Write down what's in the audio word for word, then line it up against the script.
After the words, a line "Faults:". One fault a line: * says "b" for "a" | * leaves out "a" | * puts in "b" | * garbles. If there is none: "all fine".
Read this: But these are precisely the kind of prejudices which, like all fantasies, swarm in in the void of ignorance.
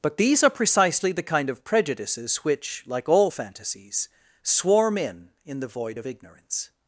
But these are precisely the kind of prejudices which, like all fantasies, swarm in in the void of ignorance.
Faults:
all fine